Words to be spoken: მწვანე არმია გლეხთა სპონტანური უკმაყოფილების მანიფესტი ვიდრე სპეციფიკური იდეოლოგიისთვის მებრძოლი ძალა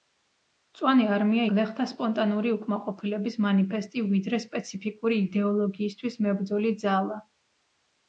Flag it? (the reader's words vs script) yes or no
no